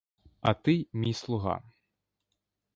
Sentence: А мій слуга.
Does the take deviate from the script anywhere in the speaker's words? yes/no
yes